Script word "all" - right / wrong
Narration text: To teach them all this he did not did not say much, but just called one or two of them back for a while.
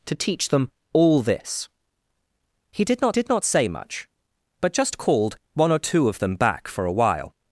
right